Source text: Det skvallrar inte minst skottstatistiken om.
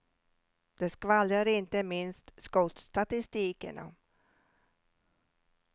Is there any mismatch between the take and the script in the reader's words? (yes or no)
no